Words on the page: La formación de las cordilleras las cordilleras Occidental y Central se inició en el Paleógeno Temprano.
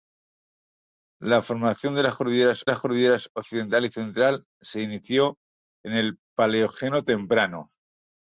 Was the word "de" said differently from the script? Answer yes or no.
no